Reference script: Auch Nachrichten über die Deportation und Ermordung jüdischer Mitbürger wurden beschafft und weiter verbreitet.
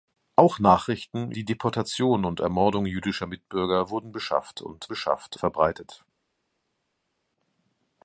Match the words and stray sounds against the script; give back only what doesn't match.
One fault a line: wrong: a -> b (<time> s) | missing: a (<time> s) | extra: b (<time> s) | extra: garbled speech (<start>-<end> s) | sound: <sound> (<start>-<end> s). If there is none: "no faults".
missing: über (1.3 s)
wrong: weiter -> beschafft (4.9 s)